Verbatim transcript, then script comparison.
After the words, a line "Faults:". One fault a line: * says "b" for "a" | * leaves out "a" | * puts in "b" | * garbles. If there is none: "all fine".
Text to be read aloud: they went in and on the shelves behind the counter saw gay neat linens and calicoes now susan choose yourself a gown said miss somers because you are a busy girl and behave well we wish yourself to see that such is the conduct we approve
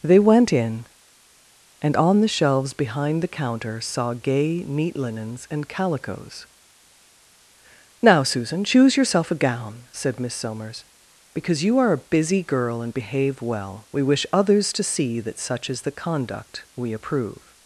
they went in and on the shelves behind the counter saw gay neat linens and calicoes now susan choose yourself a gown said miss somers because you are a busy girl and behave well we wish others to see that such is the conduct we approve
Faults:
* says "others" for "yourself"